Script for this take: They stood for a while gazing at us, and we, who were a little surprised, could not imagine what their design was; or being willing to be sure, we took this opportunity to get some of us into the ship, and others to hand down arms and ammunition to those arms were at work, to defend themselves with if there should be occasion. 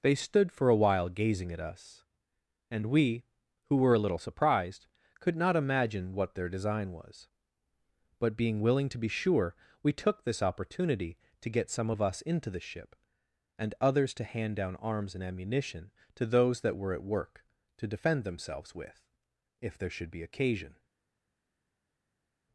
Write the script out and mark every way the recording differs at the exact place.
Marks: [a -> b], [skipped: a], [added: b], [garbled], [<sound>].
They stood for a while gazing at us, and we, who were a little surprised, could not imagine what their design was; [or -> but] being willing to be sure, we took this opportunity to get some of us into the ship, and others to hand down arms and ammunition to those [arms -> that] were at work, to defend themselves with if there should be occasion.